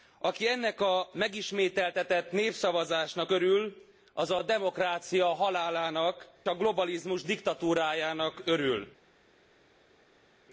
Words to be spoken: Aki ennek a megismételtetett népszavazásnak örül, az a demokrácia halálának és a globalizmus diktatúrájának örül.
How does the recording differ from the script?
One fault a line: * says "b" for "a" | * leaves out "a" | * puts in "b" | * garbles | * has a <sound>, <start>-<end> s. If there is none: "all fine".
* leaves out "és"